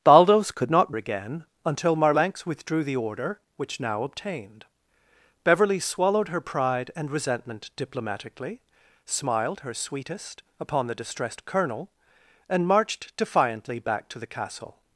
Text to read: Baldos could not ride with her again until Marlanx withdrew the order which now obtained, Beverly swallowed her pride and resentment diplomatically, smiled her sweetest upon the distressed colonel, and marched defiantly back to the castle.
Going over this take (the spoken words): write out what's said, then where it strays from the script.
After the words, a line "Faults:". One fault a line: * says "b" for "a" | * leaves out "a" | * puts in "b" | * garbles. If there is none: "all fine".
Baldos could not again until Marlanx withdrew the order which now obtained, Beverly swallowed her pride and resentment diplomatically, smiled her sweetest upon the distressed colonel, and marched defiantly back to the castle.
Faults:
* leaves out "ride with her"